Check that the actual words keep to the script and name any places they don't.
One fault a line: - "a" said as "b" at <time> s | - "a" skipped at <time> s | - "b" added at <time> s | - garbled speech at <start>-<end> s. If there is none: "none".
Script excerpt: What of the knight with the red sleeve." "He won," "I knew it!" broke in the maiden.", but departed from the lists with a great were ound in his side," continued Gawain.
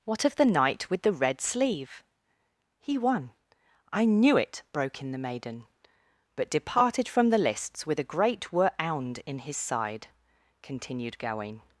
none